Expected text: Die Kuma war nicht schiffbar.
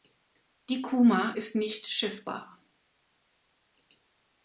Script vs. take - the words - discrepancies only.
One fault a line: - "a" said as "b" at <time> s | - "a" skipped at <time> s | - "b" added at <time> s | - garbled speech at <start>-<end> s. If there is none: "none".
- "war" said as "ist" at 1.3 s